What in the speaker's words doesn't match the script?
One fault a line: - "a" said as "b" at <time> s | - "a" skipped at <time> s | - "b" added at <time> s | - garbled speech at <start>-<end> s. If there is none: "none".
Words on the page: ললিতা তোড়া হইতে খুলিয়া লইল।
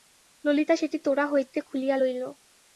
- "সেটি" added at 0.7 s